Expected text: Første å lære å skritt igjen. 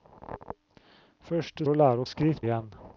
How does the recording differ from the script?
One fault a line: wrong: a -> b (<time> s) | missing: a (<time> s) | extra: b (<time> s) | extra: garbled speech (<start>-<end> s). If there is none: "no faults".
no faults